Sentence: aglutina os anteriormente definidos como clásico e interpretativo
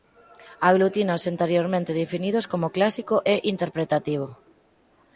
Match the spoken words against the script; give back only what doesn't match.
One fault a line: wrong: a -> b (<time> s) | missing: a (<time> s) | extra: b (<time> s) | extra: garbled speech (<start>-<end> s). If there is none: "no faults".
no faults